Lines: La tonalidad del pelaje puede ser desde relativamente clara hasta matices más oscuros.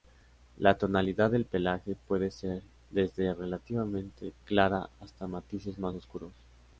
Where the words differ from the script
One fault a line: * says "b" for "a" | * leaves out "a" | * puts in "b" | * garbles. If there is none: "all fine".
all fine